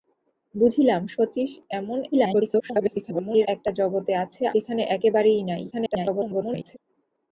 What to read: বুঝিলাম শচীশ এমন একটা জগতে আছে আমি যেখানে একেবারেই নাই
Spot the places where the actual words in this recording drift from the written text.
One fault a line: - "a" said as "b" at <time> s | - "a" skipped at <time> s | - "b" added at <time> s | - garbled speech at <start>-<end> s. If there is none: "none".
- garbled speech at 2.1-3.5 s
- "আমি" skipped at 4.4 s
- garbled speech at 5.7-6.8 s